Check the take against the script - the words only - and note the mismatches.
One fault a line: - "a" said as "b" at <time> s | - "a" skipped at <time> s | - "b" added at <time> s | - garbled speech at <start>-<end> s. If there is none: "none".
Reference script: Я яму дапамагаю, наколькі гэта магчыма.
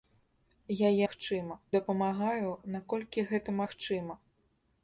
- "яму" said as "магчыма" at 1.1 s